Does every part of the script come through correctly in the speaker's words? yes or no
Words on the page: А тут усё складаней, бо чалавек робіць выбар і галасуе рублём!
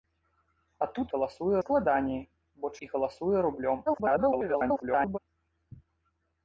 no